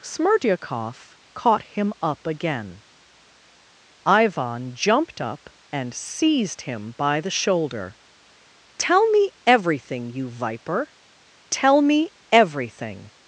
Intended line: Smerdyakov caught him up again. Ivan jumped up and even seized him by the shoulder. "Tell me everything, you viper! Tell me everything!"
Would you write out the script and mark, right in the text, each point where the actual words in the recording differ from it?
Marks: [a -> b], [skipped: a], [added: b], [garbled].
Smerdyakov caught him up again. Ivan jumped up and [skipped: even] seized him by the shoulder. "Tell me everything, you viper! Tell me everything!"